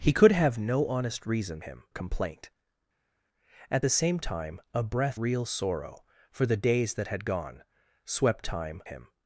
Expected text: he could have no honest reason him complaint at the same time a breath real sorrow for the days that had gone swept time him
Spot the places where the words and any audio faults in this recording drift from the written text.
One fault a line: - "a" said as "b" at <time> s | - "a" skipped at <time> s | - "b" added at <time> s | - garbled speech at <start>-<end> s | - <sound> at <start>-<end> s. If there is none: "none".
none